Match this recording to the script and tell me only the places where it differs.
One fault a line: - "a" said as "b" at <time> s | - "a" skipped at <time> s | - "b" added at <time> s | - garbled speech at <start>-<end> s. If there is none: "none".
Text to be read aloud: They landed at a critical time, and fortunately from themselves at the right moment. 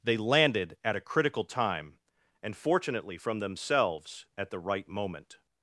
none